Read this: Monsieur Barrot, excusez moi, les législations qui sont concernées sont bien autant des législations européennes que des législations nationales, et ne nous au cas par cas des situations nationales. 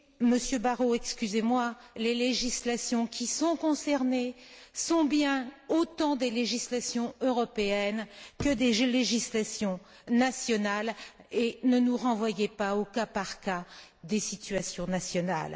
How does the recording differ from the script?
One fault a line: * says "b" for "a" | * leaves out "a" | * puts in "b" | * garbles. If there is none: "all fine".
* puts in "renvoyez pas"